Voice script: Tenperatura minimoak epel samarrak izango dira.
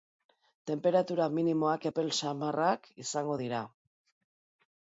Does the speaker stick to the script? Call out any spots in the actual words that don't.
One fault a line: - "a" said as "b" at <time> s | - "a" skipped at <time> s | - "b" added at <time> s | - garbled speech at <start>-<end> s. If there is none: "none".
none